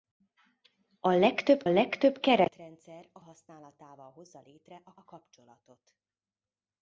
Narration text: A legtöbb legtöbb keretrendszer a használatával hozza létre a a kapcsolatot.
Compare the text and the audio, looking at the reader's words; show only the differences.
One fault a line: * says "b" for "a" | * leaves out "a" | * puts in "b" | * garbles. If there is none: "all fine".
all fine